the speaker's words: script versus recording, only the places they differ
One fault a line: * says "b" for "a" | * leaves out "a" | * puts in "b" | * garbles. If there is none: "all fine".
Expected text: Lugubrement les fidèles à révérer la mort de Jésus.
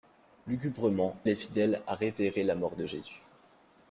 all fine